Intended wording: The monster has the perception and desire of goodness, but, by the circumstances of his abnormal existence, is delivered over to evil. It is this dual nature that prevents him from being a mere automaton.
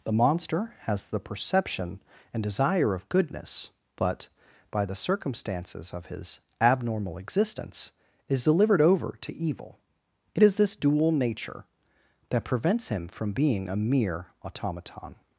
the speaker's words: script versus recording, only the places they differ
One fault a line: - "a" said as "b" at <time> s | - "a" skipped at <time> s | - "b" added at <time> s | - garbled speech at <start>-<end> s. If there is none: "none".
none